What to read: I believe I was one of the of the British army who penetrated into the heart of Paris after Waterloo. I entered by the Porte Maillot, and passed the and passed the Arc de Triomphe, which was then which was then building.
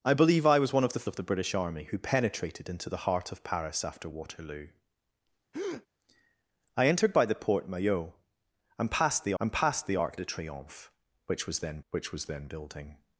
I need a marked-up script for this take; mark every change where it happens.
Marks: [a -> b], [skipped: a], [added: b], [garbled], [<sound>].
I believe I was one of the of the British army who penetrated into the heart of Paris after Waterloo. [breath] I entered by the Porte Maillot, and passed the and passed the Arc de Triomphe, which was then which was then building.